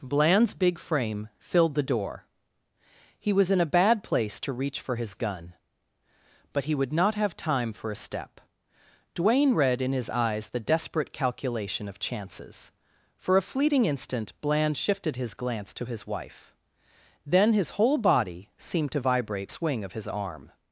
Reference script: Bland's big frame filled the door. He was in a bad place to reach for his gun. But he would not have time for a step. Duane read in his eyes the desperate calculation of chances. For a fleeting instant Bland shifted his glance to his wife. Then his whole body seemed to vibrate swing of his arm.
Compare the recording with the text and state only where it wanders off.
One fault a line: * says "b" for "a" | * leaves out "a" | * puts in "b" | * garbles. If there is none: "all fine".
all fine